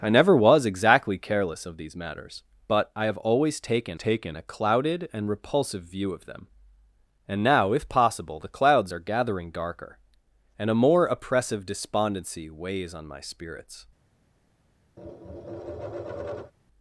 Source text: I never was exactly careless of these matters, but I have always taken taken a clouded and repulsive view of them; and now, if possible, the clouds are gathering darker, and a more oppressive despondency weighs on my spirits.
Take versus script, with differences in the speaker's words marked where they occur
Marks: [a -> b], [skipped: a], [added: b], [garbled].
I never was exactly careless of these matters, but I have always taken taken a clouded and repulsive view of them; and now, if possible, the clouds are gathering darker, and a more oppressive despondency weighs on my spirits.